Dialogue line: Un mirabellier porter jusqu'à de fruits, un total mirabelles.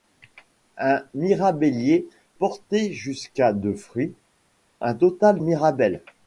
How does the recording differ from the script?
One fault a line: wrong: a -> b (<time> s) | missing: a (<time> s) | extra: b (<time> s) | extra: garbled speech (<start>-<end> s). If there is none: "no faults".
no faults